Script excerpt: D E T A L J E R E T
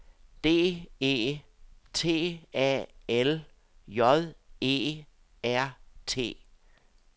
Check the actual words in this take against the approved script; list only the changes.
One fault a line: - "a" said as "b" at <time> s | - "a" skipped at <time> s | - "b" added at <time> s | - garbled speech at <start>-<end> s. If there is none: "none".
- "E" skipped at 5.8 s